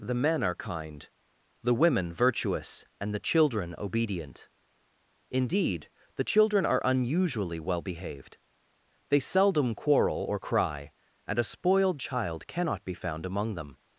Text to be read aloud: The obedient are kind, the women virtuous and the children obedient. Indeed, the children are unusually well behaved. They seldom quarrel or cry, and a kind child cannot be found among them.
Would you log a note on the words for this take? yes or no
yes